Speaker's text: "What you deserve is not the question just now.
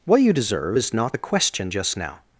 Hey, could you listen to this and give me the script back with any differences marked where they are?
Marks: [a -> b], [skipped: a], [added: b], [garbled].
"What you deserve is not the question just now.